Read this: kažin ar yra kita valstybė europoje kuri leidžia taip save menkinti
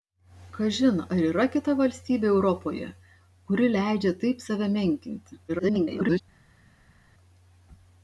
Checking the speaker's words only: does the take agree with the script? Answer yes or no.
no